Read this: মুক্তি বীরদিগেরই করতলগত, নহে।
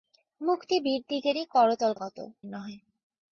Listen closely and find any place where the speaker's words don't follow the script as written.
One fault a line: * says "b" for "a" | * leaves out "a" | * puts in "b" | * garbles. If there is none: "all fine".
all fine